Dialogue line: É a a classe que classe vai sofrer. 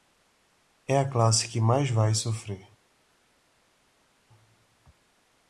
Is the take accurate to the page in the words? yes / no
no